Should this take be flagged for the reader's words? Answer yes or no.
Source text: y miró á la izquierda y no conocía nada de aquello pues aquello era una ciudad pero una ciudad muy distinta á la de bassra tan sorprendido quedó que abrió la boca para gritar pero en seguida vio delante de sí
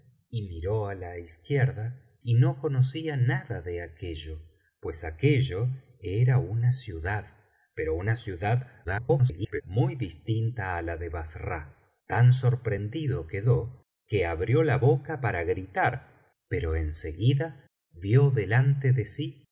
yes